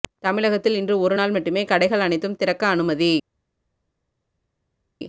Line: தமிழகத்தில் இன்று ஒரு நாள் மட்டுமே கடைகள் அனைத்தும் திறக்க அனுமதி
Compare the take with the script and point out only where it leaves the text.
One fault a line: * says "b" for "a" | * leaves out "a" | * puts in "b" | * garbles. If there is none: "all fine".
all fine